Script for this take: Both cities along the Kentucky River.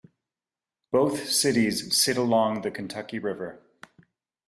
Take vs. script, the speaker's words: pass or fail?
fail